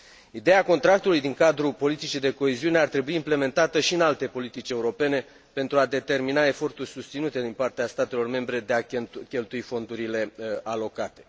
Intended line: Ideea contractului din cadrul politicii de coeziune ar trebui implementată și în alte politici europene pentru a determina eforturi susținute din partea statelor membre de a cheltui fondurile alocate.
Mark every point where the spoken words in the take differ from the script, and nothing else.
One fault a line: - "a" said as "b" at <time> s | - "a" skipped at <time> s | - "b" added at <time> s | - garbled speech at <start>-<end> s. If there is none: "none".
none